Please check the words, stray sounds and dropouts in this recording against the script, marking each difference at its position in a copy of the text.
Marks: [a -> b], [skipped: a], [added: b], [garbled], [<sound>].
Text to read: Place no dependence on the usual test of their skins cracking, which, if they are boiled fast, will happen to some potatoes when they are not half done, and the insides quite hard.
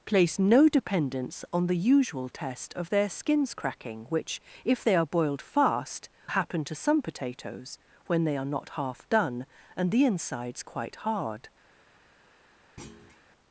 Place no dependence on the usual test of their skins cracking, which, if they are boiled fast, [skipped: will] happen to some potatoes when they are not half done, and the insides quite hard. [thud]